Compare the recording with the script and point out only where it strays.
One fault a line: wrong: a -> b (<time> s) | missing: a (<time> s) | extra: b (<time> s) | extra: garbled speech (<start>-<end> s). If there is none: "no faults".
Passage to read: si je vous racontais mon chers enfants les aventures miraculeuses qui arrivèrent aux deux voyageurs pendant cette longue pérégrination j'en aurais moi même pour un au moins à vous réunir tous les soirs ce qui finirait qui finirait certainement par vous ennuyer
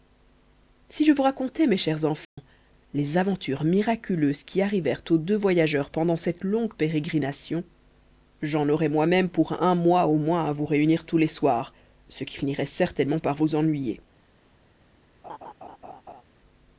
wrong: mon -> mes (1.7 s)
extra: mois (9.7 s)
missing: qui finirait (12.6 s)